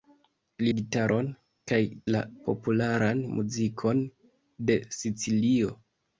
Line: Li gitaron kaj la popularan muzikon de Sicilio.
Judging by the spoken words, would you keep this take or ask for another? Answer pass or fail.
pass